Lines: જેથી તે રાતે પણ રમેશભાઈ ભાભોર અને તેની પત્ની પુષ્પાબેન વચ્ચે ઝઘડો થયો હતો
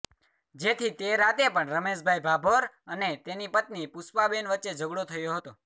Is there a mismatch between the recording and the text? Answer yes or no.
no